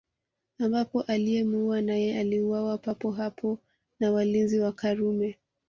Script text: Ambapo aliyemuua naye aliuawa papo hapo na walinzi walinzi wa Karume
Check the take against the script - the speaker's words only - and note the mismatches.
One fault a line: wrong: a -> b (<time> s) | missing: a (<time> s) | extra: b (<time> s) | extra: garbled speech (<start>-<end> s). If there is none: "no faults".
missing: walinzi (4.6 s)